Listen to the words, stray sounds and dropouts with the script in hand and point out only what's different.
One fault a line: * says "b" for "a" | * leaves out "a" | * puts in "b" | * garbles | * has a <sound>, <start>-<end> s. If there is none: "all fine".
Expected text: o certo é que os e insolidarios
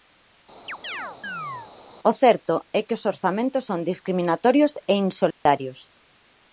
* has a chirp, 0.7-1.7 s
* puts in "orzamentos son discriminatorios"
* has a dropout, 5.3-5.5 s